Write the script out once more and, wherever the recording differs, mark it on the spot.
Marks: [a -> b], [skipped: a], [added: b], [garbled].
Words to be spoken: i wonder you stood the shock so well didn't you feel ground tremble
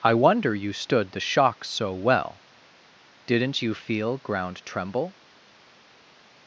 i wonder you stood the shock so well didn't you feel ground tremble